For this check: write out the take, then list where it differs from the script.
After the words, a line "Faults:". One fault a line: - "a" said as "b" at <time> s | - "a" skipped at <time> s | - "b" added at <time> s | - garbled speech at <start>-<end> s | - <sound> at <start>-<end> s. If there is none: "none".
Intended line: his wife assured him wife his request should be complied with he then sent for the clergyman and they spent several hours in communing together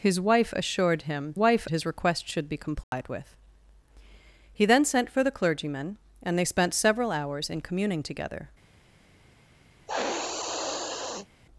his wife assured him wife his request should be complied with he then sent for the clergyman and they spent several hours in communing together
Faults:
- dropout at 2.8-2.9 s
- sniff at 9.9-11.3 s